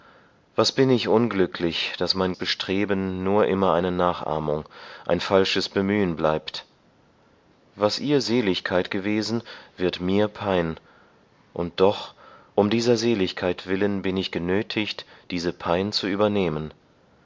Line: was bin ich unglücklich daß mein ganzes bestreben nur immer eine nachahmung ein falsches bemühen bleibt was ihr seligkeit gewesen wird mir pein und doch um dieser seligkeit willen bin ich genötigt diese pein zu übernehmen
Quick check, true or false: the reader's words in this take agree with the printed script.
false